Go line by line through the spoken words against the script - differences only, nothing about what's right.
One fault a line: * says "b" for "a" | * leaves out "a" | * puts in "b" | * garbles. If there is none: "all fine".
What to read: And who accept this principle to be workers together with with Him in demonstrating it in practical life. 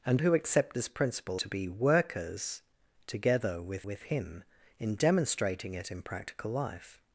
all fine